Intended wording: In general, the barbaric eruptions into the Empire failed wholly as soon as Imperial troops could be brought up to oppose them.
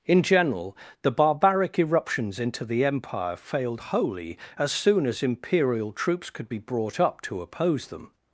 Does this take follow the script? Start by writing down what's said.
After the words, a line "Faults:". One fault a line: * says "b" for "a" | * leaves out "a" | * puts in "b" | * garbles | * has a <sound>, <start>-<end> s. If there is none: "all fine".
In general, the barbaric eruptions into the Empire failed wholly as soon as Imperial troops could be brought up to oppose them.
Faults:
all fine